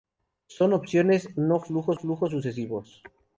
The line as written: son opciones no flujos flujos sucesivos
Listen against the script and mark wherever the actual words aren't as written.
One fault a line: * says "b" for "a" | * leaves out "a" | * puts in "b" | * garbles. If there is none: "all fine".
all fine